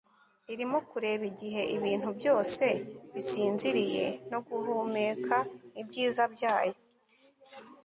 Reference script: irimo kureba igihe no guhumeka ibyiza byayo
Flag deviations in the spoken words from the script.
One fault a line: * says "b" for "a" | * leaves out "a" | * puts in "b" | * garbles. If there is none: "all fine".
* puts in "ibintu byose bisinziriye"